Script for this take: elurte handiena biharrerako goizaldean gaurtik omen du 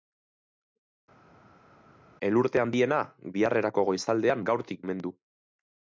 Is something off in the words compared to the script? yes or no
no